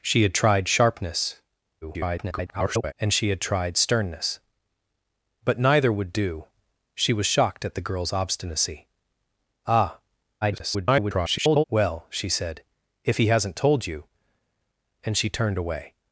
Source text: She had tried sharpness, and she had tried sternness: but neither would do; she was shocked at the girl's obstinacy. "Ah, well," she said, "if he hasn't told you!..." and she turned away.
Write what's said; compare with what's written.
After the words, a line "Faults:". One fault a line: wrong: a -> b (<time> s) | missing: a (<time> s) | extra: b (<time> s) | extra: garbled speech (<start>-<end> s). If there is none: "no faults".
She had tried sharpness, [garbled] and she had tried sternness: but neither would do; she was shocked at the girl's obstinacy. "Ah, [garbled] well," she said, "if he hasn't told you!..." and she turned away.
Faults:
extra: garbled speech (1.8-2.9 s)
extra: garbled speech (10.4-11.6 s)